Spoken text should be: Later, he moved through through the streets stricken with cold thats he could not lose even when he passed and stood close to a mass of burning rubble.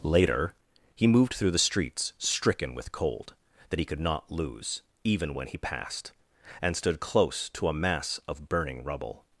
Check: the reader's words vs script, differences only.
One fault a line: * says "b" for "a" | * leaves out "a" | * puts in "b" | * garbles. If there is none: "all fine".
* leaves out "through"
* says "that" for "thats"